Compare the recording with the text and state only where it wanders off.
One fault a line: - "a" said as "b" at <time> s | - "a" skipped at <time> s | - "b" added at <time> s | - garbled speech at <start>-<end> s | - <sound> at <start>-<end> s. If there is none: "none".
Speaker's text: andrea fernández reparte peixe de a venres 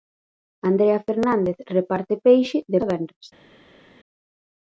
none